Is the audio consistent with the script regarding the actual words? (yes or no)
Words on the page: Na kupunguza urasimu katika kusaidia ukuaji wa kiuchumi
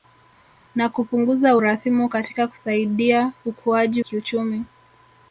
no